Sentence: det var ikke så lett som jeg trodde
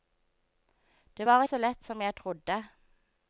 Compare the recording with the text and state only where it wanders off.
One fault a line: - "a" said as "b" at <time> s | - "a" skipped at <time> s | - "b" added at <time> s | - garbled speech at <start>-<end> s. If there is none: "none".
- "ikke" skipped at 1.4 s